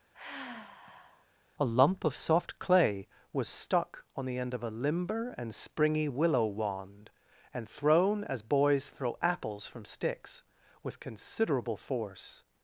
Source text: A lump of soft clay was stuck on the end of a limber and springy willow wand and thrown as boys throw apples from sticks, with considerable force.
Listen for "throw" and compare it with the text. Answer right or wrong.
right